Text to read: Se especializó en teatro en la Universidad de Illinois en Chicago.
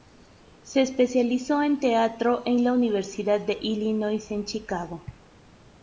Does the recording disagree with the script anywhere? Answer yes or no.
no